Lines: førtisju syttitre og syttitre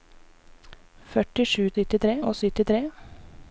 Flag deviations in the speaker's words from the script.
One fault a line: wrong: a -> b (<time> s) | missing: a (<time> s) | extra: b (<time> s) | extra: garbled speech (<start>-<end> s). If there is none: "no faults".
no faults